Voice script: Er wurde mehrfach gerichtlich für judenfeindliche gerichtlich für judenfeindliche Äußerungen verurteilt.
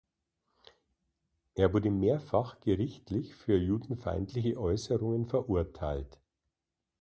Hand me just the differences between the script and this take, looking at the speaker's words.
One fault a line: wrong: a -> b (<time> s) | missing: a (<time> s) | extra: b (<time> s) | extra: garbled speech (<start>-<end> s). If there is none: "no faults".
missing: gerichtlich für judenfeindliche (4.6 s)